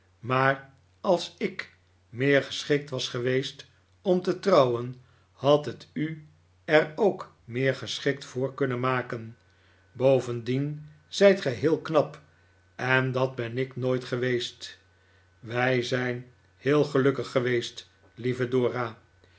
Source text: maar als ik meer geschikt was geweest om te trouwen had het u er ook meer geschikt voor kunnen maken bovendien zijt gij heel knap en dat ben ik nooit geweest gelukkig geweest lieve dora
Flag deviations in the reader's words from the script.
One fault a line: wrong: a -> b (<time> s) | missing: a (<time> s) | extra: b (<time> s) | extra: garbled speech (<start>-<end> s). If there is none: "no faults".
extra: wij zijn heel (15.4 s)